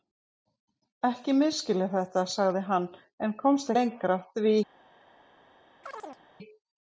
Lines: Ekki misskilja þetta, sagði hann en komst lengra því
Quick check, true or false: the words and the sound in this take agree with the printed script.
false